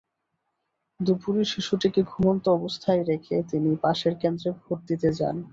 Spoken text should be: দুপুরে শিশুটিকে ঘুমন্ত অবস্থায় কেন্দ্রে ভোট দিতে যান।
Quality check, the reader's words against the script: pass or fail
fail